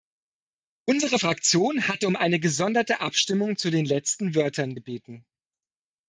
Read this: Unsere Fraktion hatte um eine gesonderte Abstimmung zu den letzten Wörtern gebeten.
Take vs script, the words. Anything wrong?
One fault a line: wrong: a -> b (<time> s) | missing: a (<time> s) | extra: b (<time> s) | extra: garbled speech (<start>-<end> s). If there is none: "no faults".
no faults